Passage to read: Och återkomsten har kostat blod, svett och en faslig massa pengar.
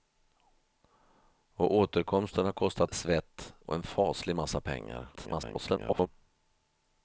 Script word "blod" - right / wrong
wrong